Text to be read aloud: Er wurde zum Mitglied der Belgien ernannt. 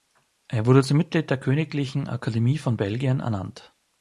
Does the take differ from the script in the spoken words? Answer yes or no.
yes